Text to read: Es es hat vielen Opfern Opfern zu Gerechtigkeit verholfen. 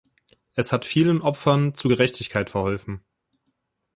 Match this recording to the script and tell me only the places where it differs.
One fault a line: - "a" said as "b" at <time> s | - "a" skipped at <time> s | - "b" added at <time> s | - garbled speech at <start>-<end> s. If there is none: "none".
- "es" skipped at 0.7 s
- "Opfern" skipped at 1.8 s